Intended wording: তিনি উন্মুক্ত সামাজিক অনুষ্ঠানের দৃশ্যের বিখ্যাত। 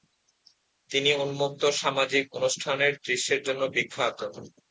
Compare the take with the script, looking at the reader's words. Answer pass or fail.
fail